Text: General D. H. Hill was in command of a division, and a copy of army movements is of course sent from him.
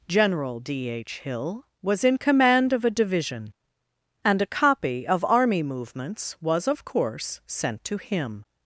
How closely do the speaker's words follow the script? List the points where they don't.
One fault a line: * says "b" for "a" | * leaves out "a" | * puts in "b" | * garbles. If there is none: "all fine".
* says "was" for "is"
* says "to" for "from"